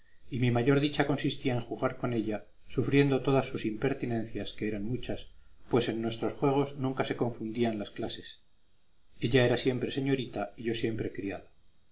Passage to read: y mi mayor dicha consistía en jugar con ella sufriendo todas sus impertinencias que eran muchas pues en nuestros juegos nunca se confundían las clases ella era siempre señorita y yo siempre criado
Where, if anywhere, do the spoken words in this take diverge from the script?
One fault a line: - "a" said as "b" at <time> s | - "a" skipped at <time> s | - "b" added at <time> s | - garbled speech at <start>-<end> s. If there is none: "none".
none